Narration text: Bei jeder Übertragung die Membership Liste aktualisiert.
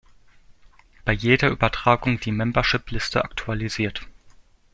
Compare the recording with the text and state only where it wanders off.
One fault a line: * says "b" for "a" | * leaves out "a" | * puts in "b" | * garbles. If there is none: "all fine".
all fine